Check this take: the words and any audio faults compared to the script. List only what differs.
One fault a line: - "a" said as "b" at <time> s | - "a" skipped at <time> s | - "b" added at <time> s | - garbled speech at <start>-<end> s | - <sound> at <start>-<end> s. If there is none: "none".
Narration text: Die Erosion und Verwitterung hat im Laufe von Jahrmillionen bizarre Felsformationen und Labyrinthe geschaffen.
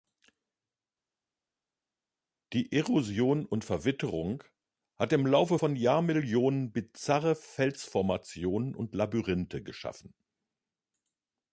none